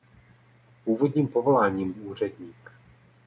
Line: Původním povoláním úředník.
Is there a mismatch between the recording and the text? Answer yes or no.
no